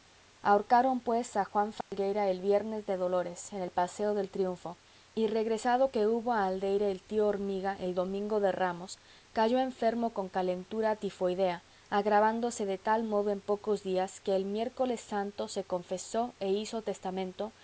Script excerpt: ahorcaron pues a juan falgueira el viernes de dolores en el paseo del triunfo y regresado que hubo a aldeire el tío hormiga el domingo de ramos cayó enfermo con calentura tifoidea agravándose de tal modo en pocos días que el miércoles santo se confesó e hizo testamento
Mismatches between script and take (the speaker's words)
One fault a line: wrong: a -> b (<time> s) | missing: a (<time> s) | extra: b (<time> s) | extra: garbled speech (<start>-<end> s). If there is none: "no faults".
no faults